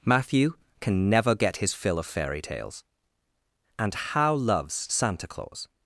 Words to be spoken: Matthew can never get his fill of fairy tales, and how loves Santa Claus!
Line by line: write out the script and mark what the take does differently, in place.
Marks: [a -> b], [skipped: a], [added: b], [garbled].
Matthew can never get his fill of fairy tales, and how loves Santa Claus!